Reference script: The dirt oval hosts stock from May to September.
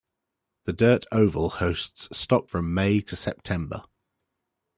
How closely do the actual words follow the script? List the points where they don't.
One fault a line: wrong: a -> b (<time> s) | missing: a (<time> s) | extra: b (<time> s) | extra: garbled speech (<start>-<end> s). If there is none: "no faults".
no faults